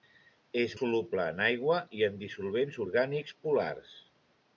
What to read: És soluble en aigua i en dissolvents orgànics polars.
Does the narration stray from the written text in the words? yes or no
no